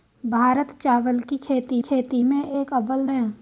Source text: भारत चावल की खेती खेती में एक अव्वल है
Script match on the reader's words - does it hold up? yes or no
yes